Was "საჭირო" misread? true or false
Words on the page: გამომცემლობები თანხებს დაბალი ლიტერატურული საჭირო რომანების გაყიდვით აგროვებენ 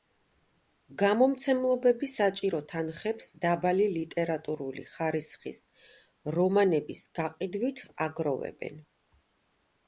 true